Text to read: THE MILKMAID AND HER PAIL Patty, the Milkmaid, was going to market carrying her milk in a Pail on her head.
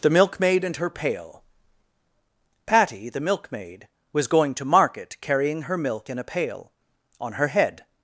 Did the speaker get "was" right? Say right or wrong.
right